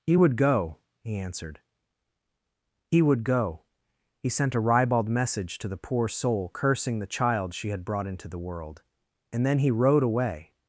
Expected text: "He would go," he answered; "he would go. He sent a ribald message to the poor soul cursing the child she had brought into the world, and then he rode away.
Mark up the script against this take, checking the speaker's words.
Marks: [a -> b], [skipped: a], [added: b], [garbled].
"He would go," he answered; "he would go. He sent a ribald message to the poor soul cursing the child she had brought into the world, and then he rode away.